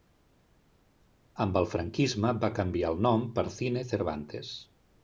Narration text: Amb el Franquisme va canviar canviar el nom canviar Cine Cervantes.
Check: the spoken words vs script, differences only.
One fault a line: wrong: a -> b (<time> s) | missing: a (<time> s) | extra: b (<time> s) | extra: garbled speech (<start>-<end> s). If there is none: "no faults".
missing: canviar (3.0 s)
wrong: canviar -> per (3.4 s)